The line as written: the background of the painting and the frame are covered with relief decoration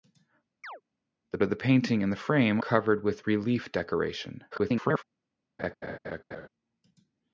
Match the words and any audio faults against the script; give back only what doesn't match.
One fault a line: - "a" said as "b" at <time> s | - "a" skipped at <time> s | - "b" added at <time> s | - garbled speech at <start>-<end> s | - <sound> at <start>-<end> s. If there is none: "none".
- chirp at 0.6-0.8 s
- "background" skipped at 1.4 s
- "are" skipped at 2.6 s
- garbled speech at 4.5-5.0 s
- laugh at 5.6-6.5 s